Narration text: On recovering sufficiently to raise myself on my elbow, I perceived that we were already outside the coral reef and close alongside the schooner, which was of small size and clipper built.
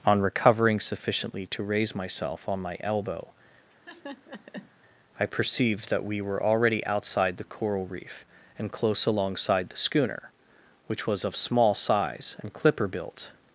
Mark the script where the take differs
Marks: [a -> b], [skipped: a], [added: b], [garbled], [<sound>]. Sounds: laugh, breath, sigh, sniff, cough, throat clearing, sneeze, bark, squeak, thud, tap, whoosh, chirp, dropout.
On recovering sufficiently to raise myself on my elbow, [laugh] I perceived that we were already outside the coral reef and close alongside the schooner, which was of small size and clipper built.